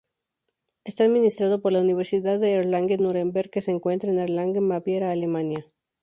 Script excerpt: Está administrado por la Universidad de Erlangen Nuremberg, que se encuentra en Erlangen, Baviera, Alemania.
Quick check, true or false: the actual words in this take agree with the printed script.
true